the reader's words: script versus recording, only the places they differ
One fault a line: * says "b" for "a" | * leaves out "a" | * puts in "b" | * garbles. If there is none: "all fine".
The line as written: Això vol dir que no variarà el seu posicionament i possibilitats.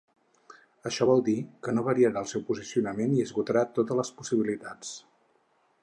* puts in "esgotarà totes les"